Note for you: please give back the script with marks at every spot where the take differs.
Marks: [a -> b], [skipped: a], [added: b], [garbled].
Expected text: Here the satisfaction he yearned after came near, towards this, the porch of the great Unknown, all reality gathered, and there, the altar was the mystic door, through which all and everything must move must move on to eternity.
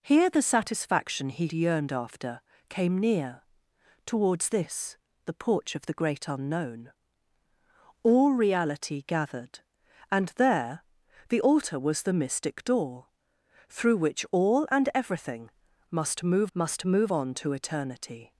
Here the satisfaction he yearned after came near, towards this, the porch of the great Unknown, all reality gathered, and there, the altar was the mystic door, through which all and everything must move must move on to eternity.